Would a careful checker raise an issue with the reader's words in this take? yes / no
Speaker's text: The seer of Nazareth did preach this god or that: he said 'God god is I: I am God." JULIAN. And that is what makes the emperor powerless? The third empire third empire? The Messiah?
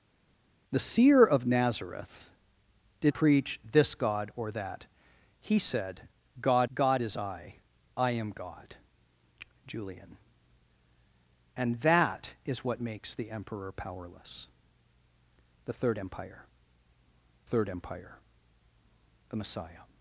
no